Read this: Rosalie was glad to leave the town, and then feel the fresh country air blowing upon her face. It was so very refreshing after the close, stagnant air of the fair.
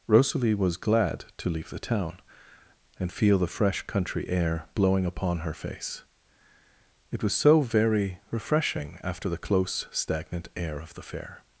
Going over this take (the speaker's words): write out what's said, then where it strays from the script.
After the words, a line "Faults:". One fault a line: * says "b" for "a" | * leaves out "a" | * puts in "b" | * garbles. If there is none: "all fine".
Rosalie was glad to leave the town, and feel the fresh country air blowing upon her face. It was so very refreshing after the close, stagnant air of the fair.
Faults:
* leaves out "then"